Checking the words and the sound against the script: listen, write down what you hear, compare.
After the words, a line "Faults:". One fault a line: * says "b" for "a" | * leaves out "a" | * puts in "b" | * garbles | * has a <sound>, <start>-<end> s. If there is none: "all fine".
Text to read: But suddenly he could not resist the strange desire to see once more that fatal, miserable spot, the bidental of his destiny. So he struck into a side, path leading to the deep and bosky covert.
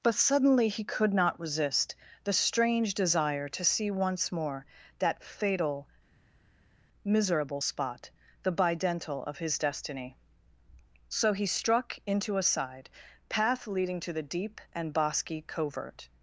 But suddenly he could not resist the strange desire to see once more that fatal, miserable spot, the bidental of his destiny. So he struck into a side, path leading to the deep and bosky covert.
Faults:
all fine